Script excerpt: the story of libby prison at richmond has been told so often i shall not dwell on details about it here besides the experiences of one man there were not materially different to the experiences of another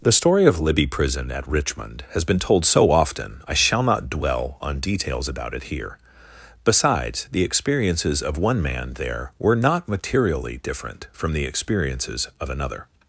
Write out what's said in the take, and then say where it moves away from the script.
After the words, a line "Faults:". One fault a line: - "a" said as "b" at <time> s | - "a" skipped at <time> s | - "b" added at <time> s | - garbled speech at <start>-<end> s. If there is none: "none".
the story of libby prison at richmond has been told so often i shall not dwell on details about it here besides the experiences of one man there were not materially different from the experiences of another
Faults:
- "to" said as "from" at 11.1 s